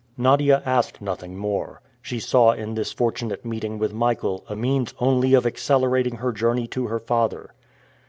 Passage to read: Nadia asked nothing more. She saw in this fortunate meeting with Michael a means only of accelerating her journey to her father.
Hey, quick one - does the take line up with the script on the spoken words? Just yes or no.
yes